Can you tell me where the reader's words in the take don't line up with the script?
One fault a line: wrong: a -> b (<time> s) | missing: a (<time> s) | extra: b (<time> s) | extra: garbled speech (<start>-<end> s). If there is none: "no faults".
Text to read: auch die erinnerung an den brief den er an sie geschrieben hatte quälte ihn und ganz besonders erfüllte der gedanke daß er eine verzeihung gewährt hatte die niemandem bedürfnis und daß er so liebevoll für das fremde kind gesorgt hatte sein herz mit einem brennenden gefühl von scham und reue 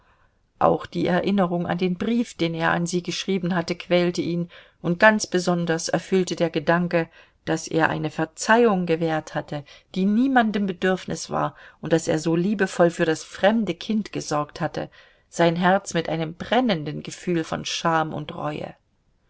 extra: war (11.3 s)